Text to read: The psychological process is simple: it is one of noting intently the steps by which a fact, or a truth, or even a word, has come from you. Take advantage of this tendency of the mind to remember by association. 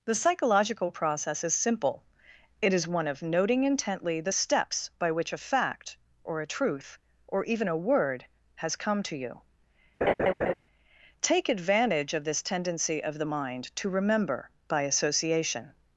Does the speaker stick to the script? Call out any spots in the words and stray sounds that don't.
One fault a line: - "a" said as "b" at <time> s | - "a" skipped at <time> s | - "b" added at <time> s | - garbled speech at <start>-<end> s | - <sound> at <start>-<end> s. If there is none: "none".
- "from" said as "to" at 9.0 s
- laugh at 10.0-10.5 s